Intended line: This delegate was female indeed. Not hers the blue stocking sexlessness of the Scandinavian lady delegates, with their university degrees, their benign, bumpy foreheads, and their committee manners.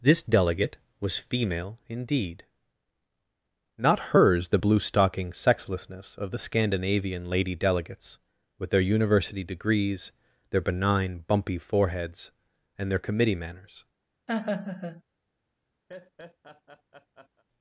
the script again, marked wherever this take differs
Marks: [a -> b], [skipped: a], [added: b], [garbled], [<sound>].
This delegate was female indeed. Not hers the blue stocking sexlessness of the Scandinavian lady delegates, with their university degrees, their benign, bumpy foreheads, and their committee manners. [laugh] [laugh]